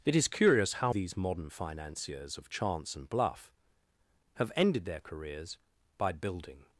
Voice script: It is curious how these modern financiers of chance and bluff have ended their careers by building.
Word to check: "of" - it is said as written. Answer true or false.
true